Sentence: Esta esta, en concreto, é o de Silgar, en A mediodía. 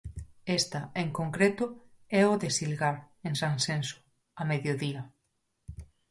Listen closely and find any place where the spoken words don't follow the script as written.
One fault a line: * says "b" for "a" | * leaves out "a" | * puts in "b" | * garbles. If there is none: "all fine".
* leaves out "esta"
* puts in "Sanxenxo"